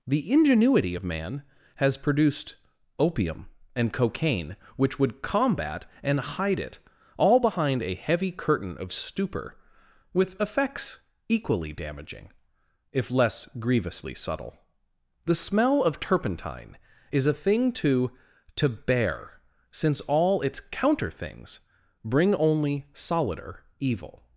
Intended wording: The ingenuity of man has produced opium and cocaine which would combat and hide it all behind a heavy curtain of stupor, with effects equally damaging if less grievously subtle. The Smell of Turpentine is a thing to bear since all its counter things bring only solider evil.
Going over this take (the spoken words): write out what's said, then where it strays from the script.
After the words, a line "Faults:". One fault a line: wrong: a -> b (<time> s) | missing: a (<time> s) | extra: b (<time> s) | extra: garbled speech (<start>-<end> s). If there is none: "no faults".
The ingenuity of man has produced opium and cocaine which would combat and hide it all behind a heavy curtain of stupor, with effects equally damaging if less grievously subtle. The Smell of Turpentine is a thing to to bear since all its counter things bring only solider evil.
Faults:
extra: to (18.6 s)